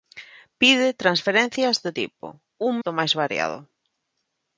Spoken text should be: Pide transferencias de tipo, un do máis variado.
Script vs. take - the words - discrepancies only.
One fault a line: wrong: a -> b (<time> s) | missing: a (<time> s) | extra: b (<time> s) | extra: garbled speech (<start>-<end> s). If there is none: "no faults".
no faults